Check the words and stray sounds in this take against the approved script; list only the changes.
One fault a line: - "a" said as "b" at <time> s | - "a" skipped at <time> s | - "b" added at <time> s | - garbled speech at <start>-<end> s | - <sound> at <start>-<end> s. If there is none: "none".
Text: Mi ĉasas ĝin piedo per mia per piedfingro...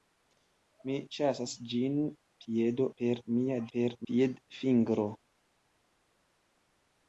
none